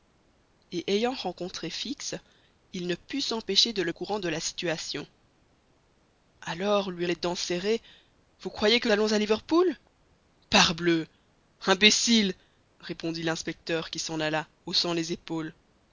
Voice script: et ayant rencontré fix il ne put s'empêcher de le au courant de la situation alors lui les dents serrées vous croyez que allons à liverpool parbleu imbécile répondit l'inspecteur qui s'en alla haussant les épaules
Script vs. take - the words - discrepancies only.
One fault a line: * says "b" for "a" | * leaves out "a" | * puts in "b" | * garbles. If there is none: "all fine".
all fine